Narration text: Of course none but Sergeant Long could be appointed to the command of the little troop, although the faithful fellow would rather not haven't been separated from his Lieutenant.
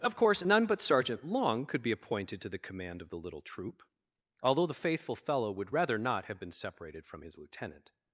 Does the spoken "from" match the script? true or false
true